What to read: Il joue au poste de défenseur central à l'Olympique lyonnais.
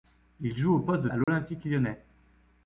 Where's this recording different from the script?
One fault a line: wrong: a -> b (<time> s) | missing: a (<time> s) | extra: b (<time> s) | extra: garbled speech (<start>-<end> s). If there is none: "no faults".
missing: défenseur central (1.1 s)